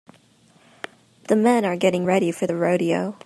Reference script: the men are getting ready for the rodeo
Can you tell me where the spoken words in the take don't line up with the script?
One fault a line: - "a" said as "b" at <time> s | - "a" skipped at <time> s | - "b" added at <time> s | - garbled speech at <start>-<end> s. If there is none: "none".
none